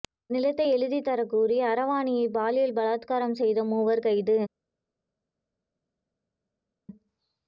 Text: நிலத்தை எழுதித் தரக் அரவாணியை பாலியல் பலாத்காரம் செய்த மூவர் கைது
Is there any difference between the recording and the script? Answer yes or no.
yes